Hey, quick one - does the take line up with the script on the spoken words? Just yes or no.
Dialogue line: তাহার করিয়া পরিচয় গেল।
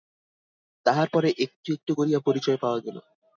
no